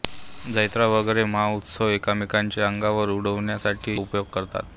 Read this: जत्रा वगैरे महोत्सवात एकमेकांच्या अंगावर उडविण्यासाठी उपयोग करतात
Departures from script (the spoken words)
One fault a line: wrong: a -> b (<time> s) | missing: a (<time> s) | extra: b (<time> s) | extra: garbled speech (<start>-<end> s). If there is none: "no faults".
no faults